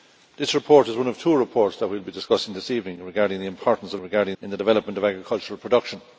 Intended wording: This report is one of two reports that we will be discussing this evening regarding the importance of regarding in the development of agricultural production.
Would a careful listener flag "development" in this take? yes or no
no